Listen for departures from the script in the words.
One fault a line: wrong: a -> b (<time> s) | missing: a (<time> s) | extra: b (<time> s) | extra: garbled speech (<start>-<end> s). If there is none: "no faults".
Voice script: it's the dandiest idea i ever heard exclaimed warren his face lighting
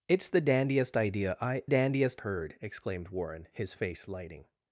wrong: ever -> dandiest (1.7 s)